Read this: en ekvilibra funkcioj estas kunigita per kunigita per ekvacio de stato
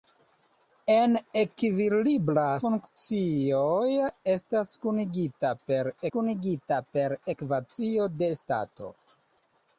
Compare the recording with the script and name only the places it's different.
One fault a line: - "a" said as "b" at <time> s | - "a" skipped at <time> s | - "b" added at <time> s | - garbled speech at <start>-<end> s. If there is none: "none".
none